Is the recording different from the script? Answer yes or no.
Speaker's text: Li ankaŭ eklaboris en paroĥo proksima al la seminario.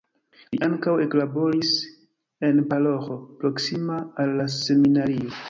no